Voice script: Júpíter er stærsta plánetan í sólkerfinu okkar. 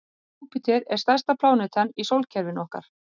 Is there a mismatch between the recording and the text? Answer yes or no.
no